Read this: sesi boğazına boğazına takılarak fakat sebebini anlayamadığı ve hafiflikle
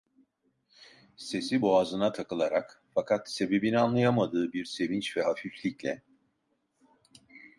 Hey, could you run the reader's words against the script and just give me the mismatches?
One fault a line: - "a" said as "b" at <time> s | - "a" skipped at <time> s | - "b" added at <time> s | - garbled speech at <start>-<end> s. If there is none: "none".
- "boğazına" skipped at 2.1 s
- "bir sevinç" added at 4.5 s